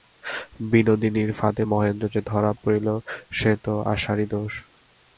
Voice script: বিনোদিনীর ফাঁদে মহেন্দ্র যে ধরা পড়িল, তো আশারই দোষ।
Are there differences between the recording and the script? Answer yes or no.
yes